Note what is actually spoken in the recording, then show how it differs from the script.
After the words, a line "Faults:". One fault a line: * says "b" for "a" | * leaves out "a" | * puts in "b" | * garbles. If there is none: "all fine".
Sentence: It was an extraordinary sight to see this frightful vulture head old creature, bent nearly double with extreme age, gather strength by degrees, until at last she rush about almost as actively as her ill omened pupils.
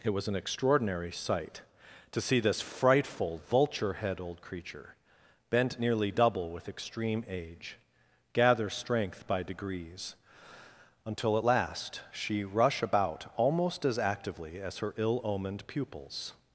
It was an extraordinary sight to see this frightful vulture head old creature, bent nearly double with extreme age, gather strength by degrees, until at last she rush about almost as actively as her ill omened pupils.
Faults:
all fine